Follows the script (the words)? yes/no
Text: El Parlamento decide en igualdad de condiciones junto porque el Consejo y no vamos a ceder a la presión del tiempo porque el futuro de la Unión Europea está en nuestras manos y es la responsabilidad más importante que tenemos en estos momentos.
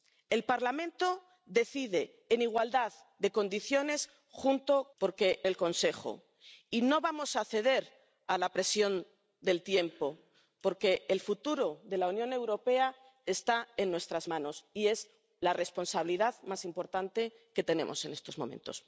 yes